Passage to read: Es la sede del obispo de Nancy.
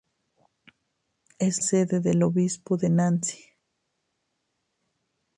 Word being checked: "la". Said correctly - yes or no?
no